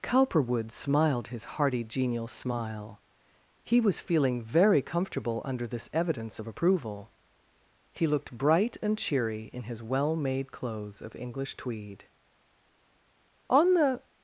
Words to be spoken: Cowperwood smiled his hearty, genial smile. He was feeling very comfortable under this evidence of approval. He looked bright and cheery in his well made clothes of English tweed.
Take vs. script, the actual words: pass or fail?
fail